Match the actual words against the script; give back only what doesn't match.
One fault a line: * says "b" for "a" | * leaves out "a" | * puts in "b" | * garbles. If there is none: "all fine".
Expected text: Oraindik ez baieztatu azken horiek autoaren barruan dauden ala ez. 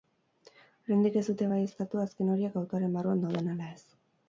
* puts in "dute"